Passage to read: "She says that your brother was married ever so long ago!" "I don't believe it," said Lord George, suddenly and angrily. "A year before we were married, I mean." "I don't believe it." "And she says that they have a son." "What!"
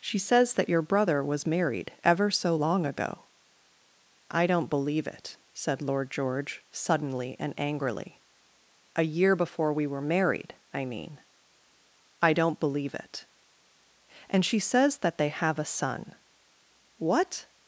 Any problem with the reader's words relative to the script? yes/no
no